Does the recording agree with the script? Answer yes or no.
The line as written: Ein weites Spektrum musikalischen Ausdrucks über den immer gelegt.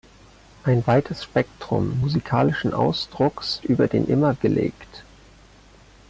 yes